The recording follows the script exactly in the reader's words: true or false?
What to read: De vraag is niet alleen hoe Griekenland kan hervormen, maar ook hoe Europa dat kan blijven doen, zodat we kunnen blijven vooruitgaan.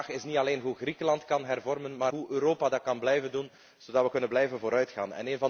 false